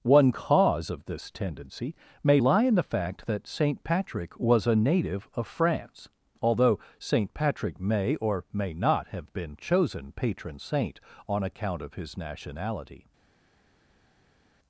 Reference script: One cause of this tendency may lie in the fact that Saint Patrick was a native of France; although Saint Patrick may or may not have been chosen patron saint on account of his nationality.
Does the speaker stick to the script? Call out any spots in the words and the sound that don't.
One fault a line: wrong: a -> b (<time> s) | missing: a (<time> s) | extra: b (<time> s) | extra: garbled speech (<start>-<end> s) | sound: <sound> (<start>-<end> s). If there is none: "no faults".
no faults